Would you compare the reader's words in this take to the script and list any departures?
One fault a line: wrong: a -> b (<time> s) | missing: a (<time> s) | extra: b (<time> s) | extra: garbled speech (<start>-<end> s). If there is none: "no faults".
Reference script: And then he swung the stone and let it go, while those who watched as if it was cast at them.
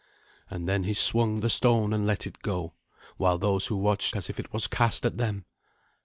no faults